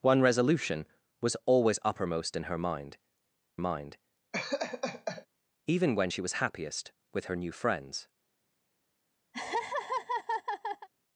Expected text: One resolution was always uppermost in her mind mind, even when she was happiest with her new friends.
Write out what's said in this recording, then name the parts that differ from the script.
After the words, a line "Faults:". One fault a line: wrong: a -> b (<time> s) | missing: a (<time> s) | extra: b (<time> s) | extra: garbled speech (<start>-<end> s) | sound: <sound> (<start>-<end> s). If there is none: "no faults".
One resolution was always uppermost in her mind mind, even when she was happiest with her new friends.
Faults:
sound: laugh (4.3-5.3 s)
sound: laugh (9.3-10.9 s)